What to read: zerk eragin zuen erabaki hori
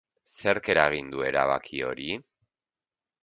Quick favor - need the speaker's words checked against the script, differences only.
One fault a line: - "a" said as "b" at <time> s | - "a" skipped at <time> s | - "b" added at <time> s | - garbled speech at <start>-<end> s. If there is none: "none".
- "zuen" said as "du" at 1.1 s